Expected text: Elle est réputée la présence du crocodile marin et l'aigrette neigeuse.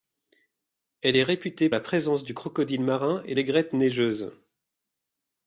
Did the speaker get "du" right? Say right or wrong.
right